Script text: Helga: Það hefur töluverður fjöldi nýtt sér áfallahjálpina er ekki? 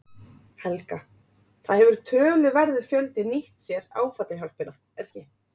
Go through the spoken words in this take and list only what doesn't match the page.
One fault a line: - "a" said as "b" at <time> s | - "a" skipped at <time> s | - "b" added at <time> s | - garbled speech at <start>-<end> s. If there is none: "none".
none